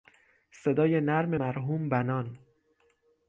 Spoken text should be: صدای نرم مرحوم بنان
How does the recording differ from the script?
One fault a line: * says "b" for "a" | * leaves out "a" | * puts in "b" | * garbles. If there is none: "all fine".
all fine